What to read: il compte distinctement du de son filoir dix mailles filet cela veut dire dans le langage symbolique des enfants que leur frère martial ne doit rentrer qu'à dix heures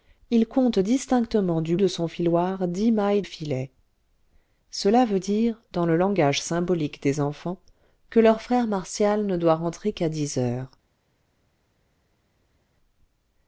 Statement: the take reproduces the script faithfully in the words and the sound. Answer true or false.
true